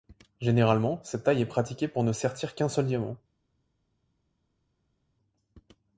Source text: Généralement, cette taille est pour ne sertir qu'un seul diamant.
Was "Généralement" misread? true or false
false